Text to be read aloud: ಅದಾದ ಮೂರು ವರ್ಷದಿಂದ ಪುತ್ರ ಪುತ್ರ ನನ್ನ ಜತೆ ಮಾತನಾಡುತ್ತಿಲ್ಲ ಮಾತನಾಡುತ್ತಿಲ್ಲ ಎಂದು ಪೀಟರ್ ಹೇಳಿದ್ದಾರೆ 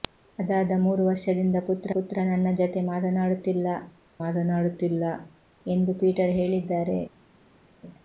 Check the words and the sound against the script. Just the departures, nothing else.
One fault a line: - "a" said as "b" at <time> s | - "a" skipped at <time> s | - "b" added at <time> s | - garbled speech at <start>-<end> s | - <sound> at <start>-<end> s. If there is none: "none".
none